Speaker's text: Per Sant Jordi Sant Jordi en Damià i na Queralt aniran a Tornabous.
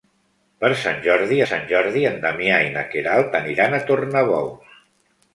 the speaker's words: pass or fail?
pass